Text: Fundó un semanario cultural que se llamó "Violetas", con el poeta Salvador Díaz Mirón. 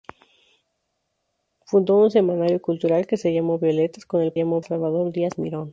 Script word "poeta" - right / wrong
wrong